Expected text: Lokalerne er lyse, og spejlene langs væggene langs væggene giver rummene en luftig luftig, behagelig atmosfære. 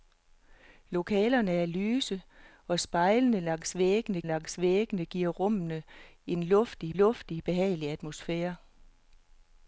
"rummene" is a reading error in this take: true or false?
false